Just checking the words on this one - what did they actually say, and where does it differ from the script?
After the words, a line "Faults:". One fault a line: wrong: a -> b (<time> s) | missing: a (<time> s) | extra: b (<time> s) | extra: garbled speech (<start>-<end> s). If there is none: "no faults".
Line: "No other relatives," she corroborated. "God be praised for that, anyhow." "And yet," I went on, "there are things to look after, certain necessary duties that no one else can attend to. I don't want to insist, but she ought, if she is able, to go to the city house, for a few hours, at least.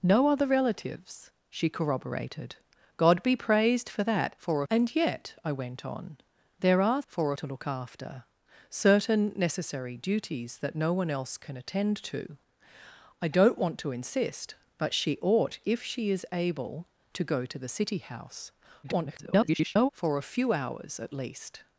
"No other relatives," she corroborated. "God be praised for that, for." "And yet," I went on, "there are for to look after, certain necessary duties that no one else can attend to. I don't want to insist, but she ought, if she is able, to go to the city house, [garbled] for a few hours, at least.
Faults:
wrong: anyhow -> for (4.4 s)
wrong: things -> for (7.1 s)
extra: garbled speech (18.8-19.9 s)